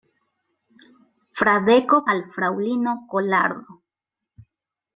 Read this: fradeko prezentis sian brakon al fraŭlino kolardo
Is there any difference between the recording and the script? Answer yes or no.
yes